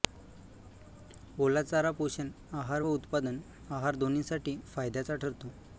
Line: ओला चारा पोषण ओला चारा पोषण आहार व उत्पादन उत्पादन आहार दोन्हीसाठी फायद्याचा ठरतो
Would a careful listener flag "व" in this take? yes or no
no